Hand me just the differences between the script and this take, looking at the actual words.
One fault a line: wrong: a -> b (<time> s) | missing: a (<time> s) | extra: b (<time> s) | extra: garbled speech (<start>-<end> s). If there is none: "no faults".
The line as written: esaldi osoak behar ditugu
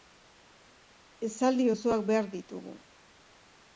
no faults